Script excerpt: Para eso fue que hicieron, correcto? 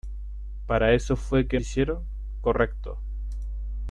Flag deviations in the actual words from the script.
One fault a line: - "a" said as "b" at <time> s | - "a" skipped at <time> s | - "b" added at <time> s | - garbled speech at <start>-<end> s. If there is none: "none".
none